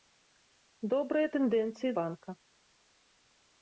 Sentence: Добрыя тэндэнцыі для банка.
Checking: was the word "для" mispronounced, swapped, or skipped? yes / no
yes